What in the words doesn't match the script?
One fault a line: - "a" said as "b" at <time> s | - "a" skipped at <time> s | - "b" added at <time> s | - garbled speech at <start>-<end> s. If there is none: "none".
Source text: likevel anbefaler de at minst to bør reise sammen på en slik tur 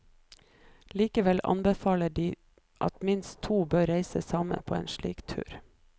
none